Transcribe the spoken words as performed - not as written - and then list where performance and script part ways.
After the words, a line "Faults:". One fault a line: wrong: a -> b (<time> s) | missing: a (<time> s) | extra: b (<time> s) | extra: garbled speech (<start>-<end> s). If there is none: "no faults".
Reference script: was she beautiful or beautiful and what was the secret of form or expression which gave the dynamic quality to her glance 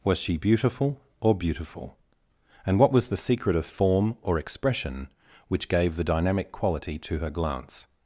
was she beautiful or beautiful and what was the secret of form or expression which gave the dynamic quality to her glance
Faults:
no faults